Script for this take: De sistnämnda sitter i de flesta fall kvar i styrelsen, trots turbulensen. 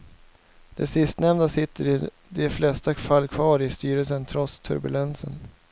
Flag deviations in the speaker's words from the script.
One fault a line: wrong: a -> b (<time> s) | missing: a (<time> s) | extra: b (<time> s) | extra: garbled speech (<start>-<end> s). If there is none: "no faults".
no faults